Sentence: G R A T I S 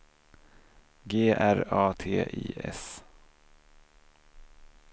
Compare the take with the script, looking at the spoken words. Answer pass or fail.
pass